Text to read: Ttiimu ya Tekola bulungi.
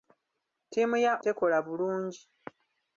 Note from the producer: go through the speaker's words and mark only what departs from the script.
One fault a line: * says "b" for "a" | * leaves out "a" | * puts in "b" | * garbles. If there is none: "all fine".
all fine